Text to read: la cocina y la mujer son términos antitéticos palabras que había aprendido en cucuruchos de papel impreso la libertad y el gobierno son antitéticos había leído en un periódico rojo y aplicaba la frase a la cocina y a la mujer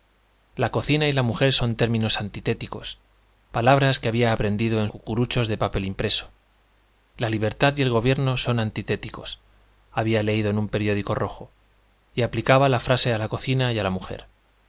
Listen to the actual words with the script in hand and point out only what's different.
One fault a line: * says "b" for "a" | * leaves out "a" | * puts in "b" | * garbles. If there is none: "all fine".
all fine